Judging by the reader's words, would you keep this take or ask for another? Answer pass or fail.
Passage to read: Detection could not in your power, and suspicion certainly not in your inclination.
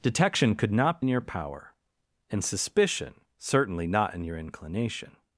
pass